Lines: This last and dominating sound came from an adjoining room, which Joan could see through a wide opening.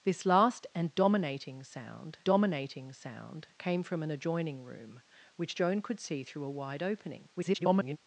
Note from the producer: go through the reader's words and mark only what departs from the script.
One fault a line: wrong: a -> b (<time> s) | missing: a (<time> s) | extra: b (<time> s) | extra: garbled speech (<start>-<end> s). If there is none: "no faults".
extra: dominating sound (2.2 s)
extra: garbled speech (7.4-8.0 s)